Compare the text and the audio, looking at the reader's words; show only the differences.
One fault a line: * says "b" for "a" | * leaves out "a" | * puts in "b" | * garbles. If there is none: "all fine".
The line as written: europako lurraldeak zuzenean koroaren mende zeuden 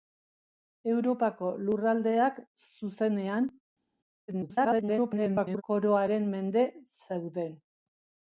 * garbles